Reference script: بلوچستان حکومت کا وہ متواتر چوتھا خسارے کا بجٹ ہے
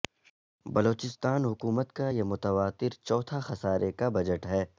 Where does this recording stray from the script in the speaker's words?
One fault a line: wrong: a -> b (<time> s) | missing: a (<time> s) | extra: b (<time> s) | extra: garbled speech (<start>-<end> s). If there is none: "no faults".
wrong: وہ -> یہ (2.1 s)